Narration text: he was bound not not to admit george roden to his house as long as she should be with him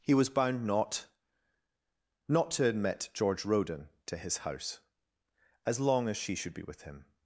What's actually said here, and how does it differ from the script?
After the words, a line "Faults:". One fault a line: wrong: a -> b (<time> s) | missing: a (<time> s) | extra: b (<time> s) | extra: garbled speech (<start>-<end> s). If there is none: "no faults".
he was bound not not to admit george roden to his house as long as she should be with him
Faults:
no faults